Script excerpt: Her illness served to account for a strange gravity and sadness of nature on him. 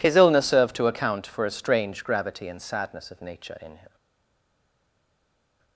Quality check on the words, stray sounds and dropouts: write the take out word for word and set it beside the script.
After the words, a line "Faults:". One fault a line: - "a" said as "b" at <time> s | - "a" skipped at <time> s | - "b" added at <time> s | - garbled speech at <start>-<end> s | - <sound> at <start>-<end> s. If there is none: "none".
His illness served to account for a strange gravity and sadness of nature in him.
Faults:
- "Her" said as "His" at 0.0 s
- "on" said as "in" at 3.6 s